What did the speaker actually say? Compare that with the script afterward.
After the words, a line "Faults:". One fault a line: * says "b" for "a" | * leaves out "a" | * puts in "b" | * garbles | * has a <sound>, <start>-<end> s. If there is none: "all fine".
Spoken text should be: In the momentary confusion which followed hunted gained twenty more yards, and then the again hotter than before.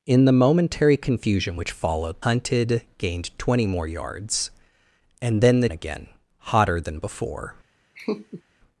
In the momentary confusion which followed hunted gained twenty more yards, and then the again hotter than before.
Faults:
* has a laugh, 8.0-8.4 s